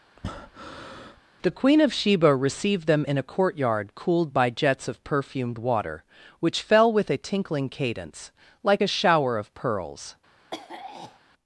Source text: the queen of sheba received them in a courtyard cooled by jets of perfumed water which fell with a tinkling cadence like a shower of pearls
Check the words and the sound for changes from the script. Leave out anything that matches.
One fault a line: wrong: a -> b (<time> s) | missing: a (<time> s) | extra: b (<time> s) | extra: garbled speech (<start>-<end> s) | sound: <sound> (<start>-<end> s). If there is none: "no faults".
sound: breath (0.2-1.2 s)
sound: throat clearing (10.5-11.2 s)